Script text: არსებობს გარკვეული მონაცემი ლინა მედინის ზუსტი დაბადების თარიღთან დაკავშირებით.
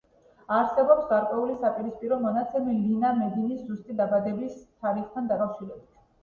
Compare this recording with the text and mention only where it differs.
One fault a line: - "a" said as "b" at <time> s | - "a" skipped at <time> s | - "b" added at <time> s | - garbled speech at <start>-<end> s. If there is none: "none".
- "საპირისპირო" added at 1.6 s